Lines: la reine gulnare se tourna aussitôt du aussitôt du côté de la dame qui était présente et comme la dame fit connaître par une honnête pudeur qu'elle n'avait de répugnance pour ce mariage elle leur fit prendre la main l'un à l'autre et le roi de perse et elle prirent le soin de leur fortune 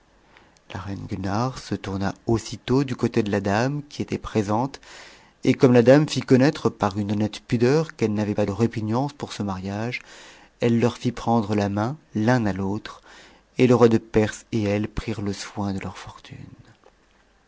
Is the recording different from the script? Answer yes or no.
yes